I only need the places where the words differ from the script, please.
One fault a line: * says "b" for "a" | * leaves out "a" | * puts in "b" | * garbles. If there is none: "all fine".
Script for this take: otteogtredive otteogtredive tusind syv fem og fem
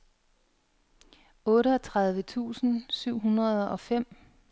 * leaves out "otteogtredive"
* says "hundrede" for "fem"